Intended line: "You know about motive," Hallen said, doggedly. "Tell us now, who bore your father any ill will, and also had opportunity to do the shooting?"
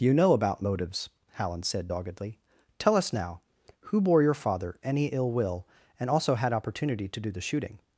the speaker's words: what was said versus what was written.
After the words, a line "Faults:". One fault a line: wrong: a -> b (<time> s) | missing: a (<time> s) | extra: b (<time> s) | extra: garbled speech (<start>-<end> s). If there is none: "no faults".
"You know about motives," Hallen said, doggedly. "Tell us now, who bore your father any ill will, and also had opportunity to do the shooting?"
Faults:
wrong: motive -> motives (0.6 s)